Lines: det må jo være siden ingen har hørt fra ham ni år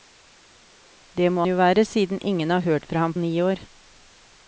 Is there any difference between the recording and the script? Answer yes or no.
no